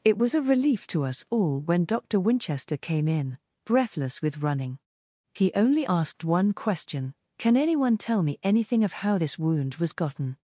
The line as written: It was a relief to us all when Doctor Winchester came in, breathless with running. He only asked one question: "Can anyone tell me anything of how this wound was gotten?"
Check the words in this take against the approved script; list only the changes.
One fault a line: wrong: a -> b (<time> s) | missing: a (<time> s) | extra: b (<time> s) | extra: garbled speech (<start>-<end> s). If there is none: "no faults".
no faults